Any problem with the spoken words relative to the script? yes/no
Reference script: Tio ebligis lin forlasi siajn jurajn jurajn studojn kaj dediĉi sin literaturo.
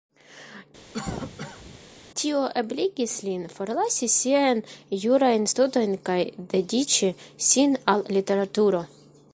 yes